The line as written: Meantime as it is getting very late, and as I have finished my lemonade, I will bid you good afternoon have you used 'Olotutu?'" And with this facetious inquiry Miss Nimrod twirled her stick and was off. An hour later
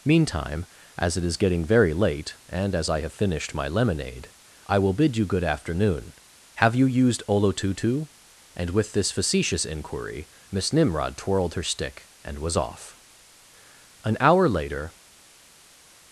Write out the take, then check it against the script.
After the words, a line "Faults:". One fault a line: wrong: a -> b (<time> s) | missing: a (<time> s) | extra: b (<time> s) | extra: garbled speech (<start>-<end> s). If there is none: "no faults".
Meantime as it is getting very late, and as I have finished my lemonade, I will bid you good afternoon have you used 'Olotutu?'" And with this facetious inquiry Miss Nimrod twirled her stick and was off. An hour later
Faults:
no faults